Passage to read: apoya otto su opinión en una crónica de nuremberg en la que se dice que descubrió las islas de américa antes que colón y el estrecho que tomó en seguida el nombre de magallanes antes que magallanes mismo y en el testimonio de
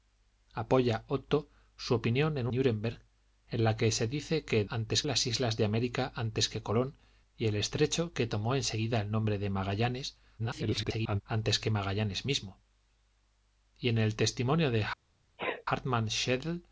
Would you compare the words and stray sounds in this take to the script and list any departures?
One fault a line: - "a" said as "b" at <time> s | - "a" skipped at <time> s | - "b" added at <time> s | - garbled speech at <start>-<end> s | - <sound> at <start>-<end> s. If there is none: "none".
- "una crónica de" skipped at 2.5 s
- "descubrió" said as "antes" at 4.7 s
- garbled speech at 10.4-11.2 s
- sneeze at 15.4-15.6 s